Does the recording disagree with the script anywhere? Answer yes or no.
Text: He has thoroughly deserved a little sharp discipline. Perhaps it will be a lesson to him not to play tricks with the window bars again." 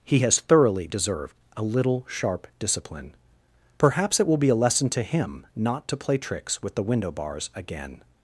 no